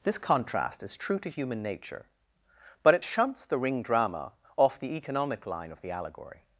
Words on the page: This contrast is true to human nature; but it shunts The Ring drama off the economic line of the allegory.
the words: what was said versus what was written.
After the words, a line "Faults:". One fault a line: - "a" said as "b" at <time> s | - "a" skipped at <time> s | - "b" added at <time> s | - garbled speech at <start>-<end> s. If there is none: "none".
This contrast is true to human nature; but it shunts The Ring drama off the economic line of the allegory.
Faults:
none